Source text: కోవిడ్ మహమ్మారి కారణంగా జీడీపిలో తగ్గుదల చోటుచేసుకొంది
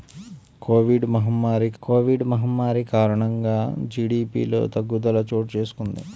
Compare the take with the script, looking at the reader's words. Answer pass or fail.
fail